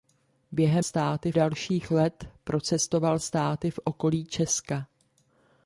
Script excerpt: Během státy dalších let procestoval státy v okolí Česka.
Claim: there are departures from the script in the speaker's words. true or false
false